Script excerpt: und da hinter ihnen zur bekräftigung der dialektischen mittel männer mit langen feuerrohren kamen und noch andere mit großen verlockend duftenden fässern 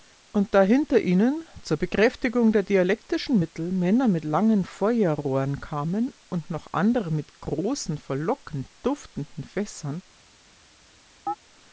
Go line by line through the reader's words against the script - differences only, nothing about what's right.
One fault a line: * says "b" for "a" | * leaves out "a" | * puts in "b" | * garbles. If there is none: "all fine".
all fine